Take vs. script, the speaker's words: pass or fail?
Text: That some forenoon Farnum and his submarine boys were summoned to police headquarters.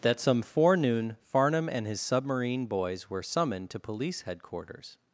pass